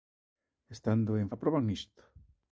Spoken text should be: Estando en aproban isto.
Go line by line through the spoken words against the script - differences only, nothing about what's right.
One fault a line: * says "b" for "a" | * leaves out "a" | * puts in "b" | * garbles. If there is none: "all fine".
all fine